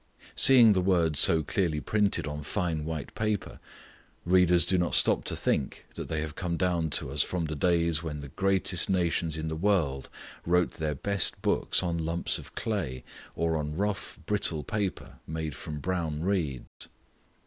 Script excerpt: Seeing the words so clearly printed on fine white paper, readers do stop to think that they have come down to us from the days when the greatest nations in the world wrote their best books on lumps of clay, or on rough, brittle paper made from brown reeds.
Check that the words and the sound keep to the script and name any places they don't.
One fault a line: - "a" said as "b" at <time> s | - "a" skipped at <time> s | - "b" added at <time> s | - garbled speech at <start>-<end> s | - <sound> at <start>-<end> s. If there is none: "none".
- "not" added at 4.8 s
- dropout at 16.7-16.8 s